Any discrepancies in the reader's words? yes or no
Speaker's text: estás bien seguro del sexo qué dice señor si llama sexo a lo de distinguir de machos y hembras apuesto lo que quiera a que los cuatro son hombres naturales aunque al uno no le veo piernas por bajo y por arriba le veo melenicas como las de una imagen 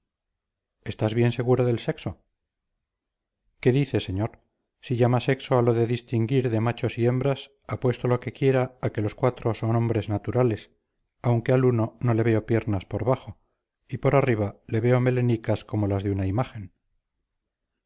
no